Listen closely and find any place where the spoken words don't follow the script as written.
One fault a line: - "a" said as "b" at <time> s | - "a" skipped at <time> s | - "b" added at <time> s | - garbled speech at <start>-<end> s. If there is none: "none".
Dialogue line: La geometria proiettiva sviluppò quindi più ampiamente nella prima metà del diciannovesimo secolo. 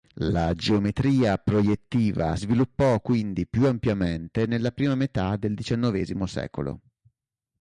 none